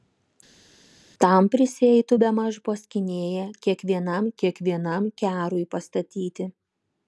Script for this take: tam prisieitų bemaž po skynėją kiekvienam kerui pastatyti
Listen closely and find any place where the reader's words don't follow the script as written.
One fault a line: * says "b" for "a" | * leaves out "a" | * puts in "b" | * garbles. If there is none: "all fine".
* puts in "kiekvienam"